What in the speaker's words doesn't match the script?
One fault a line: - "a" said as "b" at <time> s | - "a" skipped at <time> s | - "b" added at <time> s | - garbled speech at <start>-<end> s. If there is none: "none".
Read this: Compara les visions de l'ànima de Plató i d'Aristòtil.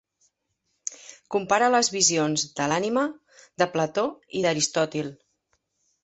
none